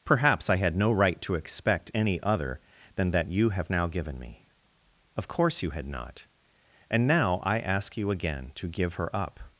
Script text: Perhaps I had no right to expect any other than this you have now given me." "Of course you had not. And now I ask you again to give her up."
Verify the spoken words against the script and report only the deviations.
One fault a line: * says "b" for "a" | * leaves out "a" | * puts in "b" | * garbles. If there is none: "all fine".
* says "that" for "this"